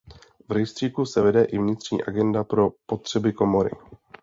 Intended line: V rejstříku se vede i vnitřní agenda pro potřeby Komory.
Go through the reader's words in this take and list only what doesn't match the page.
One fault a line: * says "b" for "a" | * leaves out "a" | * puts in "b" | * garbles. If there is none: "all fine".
all fine